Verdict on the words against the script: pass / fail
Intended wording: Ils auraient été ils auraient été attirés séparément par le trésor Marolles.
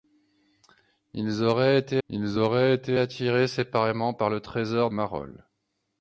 pass